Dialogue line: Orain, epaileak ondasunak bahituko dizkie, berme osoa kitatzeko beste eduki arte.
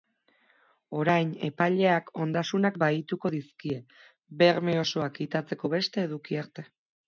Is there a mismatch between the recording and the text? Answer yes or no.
no